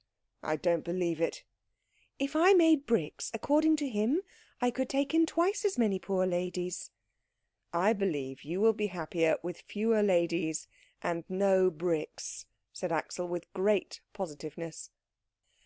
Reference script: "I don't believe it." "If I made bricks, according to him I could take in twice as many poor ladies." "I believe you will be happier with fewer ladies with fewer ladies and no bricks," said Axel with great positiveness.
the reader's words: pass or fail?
fail